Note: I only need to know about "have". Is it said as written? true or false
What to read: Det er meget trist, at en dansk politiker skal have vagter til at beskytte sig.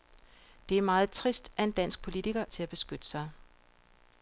false